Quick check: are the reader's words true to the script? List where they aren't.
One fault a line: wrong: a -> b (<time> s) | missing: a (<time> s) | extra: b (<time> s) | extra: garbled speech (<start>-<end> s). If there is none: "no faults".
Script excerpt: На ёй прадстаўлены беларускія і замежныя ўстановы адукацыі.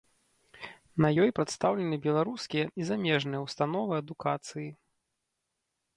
no faults